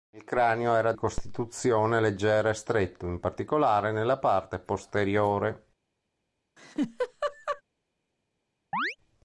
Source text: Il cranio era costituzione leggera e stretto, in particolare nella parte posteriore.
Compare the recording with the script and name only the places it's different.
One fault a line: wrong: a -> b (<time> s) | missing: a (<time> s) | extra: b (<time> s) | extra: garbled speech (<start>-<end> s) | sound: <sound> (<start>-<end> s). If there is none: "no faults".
sound: laugh (6.6-7.6 s)
sound: chirp (8.7-9.0 s)